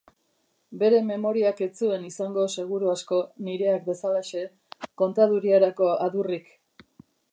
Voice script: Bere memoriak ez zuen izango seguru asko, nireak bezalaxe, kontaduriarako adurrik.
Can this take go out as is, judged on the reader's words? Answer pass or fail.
pass